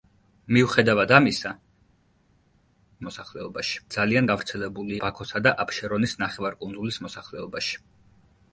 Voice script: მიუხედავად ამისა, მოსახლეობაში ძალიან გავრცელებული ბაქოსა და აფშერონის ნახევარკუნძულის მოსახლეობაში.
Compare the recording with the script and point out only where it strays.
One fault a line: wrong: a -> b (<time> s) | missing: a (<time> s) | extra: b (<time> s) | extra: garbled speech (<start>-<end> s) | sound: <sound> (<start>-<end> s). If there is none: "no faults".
no faults